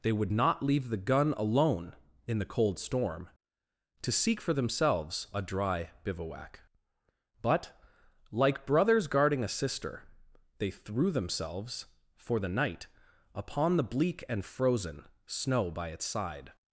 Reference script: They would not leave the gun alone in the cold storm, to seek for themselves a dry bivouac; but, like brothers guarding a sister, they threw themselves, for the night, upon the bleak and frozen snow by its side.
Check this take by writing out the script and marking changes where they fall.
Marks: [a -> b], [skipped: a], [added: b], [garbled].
They would not leave the gun alone in the cold storm, to seek for themselves a dry bivouac; but, like brothers guarding a sister, they threw themselves, for the night, upon the bleak and frozen snow by its side.